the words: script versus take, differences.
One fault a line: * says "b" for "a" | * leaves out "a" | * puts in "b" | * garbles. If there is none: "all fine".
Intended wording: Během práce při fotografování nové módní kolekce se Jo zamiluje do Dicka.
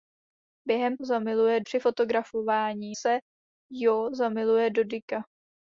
* says "zamiluje" for "práce"
* leaves out "nové módní kolekce"